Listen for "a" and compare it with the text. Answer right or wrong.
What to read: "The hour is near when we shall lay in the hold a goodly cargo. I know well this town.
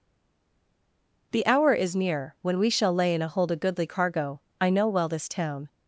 right